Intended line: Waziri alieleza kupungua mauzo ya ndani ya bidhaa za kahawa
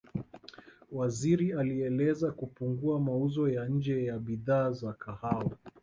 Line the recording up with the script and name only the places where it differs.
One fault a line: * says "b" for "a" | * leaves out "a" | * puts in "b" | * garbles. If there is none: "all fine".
* says "nje" for "ndani"